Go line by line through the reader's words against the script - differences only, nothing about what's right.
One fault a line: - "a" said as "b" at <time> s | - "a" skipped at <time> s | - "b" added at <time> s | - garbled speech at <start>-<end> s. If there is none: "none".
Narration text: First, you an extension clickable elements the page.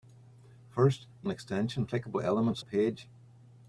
none